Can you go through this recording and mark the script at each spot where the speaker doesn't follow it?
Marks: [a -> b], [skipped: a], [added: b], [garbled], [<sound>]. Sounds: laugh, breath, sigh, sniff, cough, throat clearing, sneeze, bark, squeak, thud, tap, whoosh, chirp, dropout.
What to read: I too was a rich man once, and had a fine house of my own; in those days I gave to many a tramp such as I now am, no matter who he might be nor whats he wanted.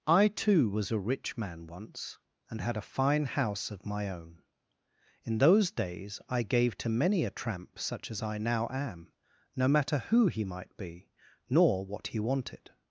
I too was a rich man once, and had a fine house of my own; in those days I gave to many a tramp such as I now am, no matter who he might be nor [whats -> what] he wanted.